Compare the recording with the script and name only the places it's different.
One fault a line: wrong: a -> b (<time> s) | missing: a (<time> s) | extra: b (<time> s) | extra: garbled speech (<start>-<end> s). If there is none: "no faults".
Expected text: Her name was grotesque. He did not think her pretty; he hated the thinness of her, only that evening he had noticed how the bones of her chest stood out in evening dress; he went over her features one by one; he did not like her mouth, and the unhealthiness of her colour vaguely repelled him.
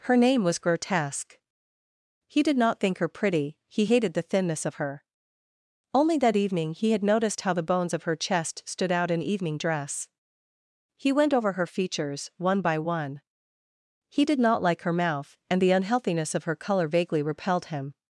no faults